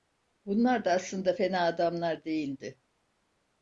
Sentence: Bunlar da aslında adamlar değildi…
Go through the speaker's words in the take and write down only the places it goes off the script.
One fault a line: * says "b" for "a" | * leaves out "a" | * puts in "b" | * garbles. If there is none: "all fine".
* puts in "fena"